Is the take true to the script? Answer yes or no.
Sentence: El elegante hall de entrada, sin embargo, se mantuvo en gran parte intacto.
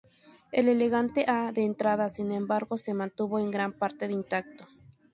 yes